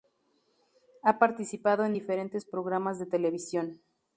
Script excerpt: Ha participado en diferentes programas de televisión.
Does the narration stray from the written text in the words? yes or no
no